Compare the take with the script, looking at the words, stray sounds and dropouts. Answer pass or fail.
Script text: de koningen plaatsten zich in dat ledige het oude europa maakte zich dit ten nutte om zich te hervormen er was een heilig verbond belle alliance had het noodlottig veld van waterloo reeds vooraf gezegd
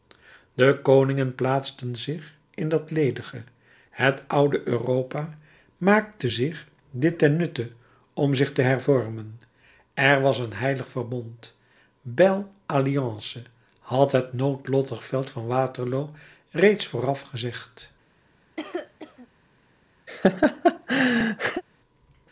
fail